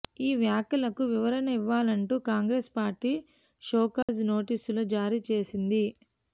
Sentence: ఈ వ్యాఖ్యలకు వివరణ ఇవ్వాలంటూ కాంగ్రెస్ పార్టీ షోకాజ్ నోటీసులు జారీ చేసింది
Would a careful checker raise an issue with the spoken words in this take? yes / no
no